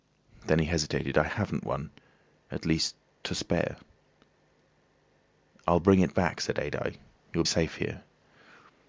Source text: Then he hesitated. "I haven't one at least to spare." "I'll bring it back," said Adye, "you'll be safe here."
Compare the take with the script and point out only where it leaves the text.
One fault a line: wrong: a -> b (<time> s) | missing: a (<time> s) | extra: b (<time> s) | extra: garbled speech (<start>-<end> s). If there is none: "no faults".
missing: be (7.4 s)